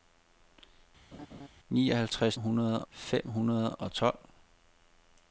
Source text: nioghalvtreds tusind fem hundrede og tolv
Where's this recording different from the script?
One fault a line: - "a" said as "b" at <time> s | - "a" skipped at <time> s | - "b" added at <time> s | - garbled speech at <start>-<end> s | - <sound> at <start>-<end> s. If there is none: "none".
- laugh at 1.1-1.5 s
- "tusind" said as "hundrede" at 2.4 s